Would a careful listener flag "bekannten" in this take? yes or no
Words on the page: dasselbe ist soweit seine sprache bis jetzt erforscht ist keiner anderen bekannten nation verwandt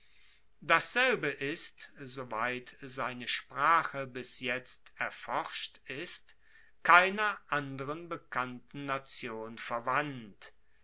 no